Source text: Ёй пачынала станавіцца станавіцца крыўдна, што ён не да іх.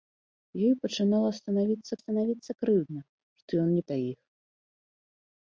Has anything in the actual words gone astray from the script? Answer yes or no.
no